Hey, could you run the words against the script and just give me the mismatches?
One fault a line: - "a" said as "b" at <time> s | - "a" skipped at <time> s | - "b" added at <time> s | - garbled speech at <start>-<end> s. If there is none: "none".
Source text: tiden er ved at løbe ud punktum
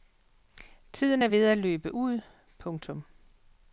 none